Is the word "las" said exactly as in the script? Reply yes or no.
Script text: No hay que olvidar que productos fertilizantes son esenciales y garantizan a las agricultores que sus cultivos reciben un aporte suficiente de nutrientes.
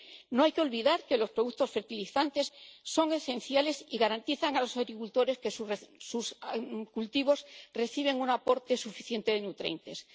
no